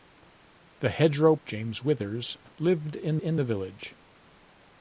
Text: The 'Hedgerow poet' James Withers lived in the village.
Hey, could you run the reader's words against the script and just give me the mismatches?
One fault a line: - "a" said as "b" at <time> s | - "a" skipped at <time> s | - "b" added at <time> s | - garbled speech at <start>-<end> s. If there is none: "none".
- "poet" skipped at 1.4 s
- "in" added at 3.2 s